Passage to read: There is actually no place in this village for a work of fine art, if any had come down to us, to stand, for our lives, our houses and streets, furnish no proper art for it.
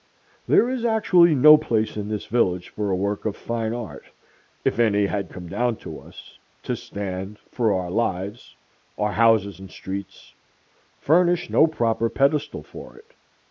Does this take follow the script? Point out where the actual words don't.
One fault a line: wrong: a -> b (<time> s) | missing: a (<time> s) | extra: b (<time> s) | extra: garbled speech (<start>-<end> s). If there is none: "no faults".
wrong: art -> pedestal (12.1 s)